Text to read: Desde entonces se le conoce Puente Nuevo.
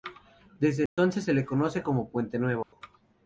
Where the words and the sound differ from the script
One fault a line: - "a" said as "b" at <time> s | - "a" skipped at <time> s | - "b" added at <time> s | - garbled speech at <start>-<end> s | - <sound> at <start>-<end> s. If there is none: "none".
- dropout at 0.9-1.0 s
- "como" added at 1.8 s
- dropout at 2.6-2.7 s